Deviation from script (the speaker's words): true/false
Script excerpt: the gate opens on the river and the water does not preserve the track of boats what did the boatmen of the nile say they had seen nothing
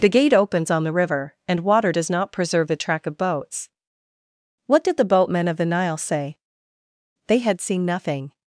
true